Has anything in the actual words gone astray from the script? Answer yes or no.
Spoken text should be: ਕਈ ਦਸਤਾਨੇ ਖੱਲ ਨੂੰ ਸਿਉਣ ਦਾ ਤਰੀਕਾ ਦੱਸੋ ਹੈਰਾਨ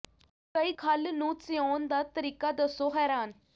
yes